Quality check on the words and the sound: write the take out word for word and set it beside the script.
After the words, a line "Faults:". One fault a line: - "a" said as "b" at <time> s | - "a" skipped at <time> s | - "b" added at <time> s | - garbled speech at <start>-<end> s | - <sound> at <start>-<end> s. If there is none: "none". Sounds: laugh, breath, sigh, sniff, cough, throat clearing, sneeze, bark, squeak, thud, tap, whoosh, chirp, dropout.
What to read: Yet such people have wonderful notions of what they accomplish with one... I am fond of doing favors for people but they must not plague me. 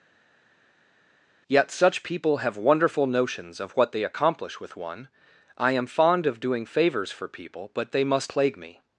Yet such people have wonderful notions of what they accomplish with one... I am fond of doing favors for people but they must plague me.
Faults:
- "not" skipped at 8.3 s